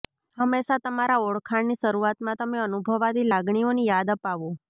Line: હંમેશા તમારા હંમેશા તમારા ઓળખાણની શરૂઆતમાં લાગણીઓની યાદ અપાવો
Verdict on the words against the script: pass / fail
fail